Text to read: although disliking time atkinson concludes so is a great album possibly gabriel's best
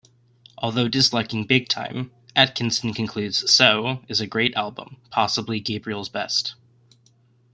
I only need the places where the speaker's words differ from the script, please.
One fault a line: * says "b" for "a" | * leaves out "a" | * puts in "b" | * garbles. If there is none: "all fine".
* puts in "big"